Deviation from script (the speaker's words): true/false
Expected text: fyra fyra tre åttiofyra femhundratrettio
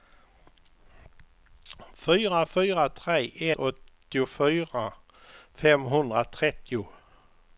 false